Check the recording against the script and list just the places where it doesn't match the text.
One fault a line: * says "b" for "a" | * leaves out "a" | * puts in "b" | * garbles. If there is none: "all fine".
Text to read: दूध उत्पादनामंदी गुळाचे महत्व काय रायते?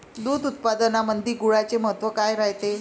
all fine